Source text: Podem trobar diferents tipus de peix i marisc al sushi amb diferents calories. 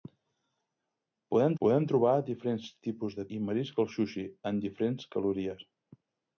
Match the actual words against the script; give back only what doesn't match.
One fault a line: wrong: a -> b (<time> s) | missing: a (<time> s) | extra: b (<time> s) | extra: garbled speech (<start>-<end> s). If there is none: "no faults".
extra: podem (1.6 s)
missing: peix (3.3 s)